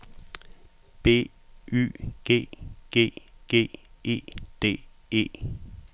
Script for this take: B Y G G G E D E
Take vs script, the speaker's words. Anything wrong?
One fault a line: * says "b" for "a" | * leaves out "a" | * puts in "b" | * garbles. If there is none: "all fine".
all fine